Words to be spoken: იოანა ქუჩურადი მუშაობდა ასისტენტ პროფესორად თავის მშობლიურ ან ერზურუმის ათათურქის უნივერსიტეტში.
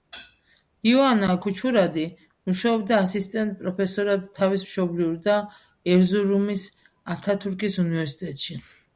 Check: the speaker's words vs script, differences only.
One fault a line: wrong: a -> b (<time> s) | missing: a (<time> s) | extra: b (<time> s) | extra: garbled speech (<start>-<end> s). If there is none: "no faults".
wrong: ან -> და (5.3 s)